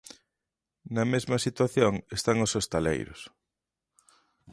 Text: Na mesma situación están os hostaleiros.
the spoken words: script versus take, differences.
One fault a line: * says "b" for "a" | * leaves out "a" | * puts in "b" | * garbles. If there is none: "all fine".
all fine